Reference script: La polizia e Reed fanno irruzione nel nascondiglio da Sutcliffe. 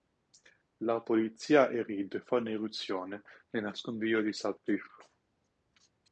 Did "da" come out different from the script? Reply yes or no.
yes